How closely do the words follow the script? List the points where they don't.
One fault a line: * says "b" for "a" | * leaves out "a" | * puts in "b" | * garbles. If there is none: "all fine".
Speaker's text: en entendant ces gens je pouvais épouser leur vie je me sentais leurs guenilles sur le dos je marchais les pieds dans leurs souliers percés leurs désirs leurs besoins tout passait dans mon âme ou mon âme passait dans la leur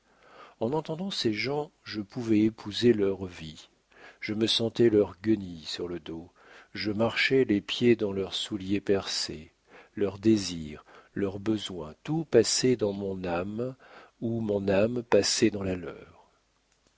all fine